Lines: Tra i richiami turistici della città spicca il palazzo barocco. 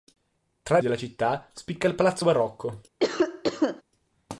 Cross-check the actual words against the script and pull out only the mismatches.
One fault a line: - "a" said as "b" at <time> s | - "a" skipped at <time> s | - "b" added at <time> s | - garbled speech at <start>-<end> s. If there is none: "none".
- "richiami turistici" skipped at 0.8 s